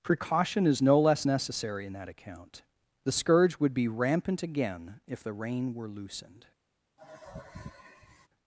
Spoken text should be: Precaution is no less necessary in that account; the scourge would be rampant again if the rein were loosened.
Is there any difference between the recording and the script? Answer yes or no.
no